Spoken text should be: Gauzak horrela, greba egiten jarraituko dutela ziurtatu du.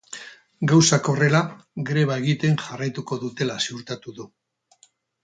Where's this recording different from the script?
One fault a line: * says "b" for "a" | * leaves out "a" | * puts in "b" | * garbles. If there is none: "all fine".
all fine